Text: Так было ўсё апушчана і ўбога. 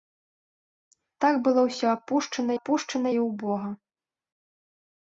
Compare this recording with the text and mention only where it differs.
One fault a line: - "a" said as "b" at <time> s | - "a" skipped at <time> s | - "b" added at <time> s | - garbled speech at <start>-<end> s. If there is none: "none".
- "апушчана" added at 2.6 s